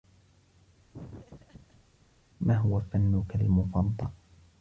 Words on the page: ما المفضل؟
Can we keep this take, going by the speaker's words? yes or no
no